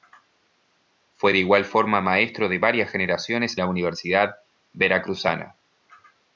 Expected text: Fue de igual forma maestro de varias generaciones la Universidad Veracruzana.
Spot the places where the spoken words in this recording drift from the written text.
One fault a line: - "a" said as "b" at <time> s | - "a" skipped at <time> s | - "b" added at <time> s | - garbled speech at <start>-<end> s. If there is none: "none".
none